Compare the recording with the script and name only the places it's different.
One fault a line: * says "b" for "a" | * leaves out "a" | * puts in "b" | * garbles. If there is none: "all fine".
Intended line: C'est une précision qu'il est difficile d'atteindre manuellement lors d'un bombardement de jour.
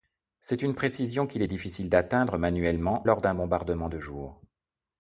all fine